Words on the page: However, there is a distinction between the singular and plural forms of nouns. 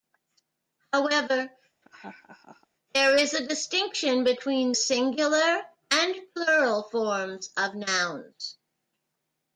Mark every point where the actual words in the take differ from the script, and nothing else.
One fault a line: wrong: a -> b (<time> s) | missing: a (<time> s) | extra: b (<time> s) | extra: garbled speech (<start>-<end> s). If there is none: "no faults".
missing: the (4.7 s)